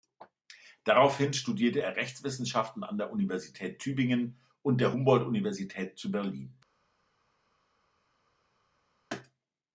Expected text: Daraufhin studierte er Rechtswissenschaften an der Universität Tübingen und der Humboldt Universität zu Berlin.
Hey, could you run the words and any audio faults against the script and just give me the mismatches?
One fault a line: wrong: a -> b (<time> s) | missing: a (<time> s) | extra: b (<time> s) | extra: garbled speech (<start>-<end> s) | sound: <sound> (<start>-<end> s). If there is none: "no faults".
no faults